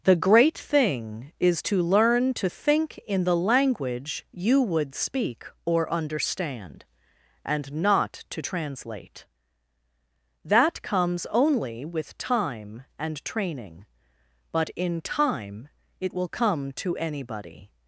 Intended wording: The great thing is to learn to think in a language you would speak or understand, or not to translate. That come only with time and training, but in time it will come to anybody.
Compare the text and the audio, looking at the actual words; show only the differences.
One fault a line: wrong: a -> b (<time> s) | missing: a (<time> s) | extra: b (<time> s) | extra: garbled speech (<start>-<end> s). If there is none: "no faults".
wrong: a -> the (3.2 s)
wrong: or -> and (7.5 s)
wrong: come -> comes (10.8 s)